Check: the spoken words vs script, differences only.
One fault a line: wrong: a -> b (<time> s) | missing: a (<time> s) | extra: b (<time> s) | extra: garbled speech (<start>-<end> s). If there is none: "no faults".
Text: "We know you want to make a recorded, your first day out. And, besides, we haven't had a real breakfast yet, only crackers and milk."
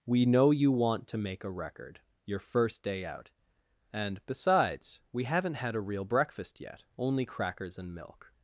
wrong: recorded -> record (1.5 s)